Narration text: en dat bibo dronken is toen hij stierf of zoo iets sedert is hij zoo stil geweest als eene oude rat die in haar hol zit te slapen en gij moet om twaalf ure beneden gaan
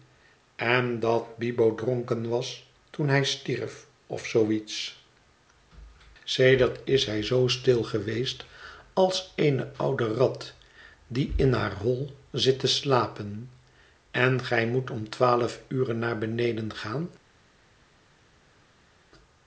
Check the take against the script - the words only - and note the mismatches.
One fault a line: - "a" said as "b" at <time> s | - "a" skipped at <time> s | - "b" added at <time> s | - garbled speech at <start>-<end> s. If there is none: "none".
- "is" said as "was" at 2.3 s
- "naar" added at 15.9 s